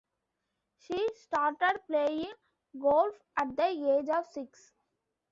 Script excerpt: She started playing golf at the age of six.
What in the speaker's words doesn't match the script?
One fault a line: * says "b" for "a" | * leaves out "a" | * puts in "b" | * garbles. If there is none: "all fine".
all fine